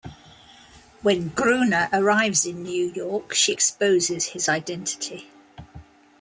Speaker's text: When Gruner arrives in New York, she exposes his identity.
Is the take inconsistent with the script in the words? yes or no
no